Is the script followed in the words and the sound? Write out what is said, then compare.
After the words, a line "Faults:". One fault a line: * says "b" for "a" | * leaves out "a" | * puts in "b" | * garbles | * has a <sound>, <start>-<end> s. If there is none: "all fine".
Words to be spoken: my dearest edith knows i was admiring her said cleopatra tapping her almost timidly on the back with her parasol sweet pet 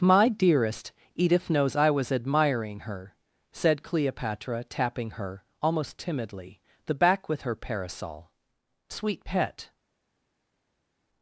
my dearest edith knows i was admiring her said cleopatra tapping her almost timidly the back with her parasol sweet pet
Faults:
* leaves out "on"